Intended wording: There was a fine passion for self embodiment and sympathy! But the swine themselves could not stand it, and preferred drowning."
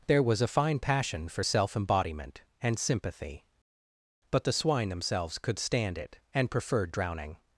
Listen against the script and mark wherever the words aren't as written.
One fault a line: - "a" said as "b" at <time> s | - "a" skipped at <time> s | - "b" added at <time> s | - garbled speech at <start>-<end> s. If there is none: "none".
- "not" skipped at 5.6 s